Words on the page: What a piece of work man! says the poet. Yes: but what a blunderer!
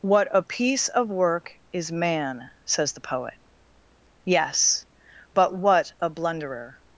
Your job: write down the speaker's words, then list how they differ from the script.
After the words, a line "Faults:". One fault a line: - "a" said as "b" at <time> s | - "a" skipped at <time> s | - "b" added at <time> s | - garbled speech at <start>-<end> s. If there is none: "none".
What a piece of work is man! says the poet. Yes: but what a blunderer!
Faults:
- "is" added at 1.7 s